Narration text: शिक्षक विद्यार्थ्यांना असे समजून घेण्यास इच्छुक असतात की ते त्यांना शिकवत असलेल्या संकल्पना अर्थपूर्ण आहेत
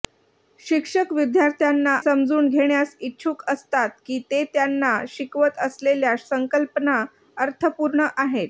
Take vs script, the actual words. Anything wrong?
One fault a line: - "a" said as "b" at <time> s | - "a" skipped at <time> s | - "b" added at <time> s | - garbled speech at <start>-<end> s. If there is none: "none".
- "असे" skipped at 1.9 s